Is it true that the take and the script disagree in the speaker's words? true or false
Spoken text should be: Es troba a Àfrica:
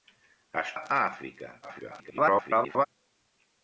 true